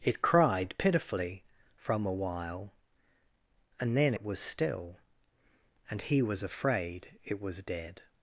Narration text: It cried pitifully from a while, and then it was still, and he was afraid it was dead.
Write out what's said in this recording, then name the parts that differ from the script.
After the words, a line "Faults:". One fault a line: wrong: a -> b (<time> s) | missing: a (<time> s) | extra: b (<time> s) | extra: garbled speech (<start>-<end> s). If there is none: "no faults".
It cried pitifully from a while, and then it was still, and he was afraid it was dead.
Faults:
no faults